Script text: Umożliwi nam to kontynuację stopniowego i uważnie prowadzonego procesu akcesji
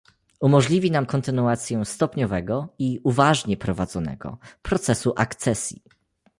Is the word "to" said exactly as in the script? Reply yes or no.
no